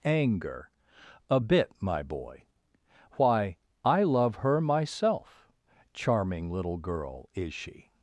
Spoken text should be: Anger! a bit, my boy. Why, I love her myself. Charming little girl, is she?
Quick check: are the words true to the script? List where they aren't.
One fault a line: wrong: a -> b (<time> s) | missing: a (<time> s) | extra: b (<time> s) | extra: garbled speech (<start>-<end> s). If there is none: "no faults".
no faults